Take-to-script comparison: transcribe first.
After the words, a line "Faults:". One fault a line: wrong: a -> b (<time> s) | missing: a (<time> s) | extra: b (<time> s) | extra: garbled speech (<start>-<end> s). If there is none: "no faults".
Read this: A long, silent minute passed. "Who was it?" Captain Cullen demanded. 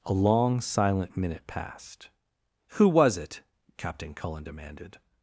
A long, silent minute passed. "Who was it?" Captain Cullen demanded.
Faults:
no faults